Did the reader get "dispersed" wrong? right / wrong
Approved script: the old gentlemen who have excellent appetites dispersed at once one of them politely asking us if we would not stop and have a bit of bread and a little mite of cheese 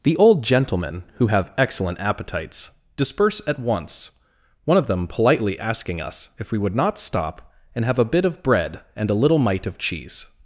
wrong